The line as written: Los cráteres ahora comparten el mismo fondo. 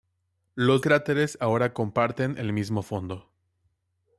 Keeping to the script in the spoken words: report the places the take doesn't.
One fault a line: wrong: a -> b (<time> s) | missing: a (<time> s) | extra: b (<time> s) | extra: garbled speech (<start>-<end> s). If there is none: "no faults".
no faults